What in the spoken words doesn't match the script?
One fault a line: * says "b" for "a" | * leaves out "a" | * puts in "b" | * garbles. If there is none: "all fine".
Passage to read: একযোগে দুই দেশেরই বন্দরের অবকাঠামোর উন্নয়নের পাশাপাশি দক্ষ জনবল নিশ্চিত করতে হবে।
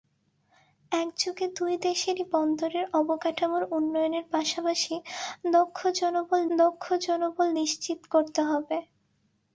* puts in "দক্ষ জনবল"